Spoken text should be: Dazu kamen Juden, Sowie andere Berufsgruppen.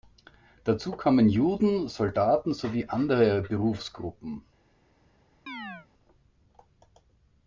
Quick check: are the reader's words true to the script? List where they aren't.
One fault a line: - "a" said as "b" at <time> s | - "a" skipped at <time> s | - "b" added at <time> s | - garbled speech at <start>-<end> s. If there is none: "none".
- "Soldaten" added at 1.9 s